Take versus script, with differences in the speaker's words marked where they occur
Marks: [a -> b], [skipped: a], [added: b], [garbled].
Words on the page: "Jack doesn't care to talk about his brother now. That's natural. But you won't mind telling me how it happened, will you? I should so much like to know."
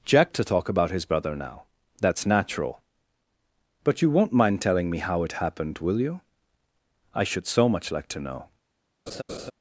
"Jack [skipped: doesn't care] to talk about his brother now. That's natural. But you won't mind telling me how it happened, will you? I should so much like to know."